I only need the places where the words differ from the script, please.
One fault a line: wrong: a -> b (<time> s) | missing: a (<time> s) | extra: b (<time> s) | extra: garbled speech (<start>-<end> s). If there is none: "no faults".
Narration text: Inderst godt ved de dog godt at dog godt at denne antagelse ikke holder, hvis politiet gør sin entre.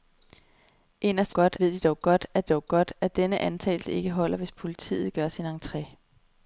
no faults